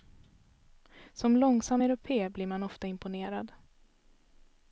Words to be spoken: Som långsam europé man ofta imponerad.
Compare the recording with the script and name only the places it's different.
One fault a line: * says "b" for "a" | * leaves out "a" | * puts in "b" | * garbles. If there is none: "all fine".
* puts in "blir"